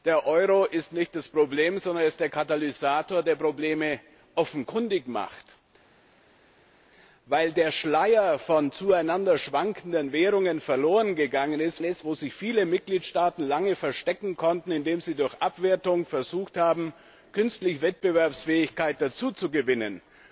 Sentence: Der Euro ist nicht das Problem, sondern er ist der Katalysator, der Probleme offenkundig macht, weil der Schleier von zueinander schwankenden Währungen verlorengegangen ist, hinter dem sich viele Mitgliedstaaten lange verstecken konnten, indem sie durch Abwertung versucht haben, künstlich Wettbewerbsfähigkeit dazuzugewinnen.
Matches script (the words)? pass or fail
fail